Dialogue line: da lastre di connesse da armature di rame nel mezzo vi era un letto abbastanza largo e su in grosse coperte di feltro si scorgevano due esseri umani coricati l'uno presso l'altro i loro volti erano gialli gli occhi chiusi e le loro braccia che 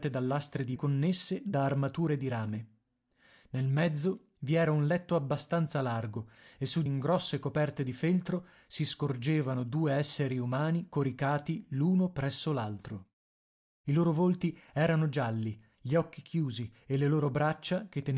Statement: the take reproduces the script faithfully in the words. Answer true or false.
true